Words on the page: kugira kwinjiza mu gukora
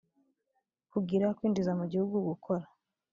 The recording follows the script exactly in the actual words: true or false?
false